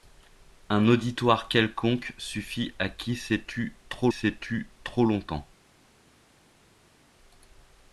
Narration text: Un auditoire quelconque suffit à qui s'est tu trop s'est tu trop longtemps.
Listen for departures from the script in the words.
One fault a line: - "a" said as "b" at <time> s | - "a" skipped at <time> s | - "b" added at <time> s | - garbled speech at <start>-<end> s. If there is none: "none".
none